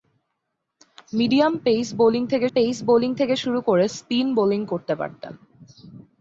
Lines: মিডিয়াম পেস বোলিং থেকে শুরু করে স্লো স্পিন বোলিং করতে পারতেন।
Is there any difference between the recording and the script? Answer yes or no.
yes